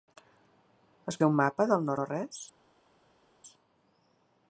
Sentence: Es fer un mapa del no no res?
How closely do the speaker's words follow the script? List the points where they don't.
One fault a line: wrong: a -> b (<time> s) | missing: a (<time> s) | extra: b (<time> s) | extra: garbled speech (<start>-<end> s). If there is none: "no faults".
no faults